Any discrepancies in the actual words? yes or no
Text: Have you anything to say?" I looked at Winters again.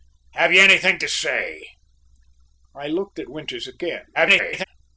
yes